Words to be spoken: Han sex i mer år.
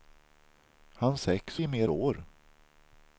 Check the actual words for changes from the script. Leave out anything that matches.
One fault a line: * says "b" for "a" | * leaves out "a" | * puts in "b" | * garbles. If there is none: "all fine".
all fine